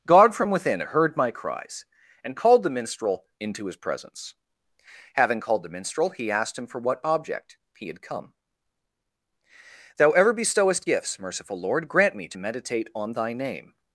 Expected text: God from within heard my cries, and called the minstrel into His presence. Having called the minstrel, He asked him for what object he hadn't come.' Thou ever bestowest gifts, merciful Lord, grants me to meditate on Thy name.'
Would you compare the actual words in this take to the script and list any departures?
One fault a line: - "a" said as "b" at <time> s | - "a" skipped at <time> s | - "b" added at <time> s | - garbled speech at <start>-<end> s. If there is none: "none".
- "hadn't" said as "had" at 7.9 s
- "grants" said as "grant" at 11.9 s